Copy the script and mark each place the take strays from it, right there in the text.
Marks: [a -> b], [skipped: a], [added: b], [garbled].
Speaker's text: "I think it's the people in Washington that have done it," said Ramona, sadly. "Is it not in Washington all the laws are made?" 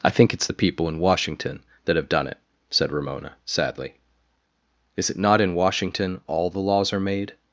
"I think it's the people in Washington that have done it," said Ramona, sadly. "Is it not in Washington all the laws are made?"